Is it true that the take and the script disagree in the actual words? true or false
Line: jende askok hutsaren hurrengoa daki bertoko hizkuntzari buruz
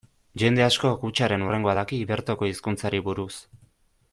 false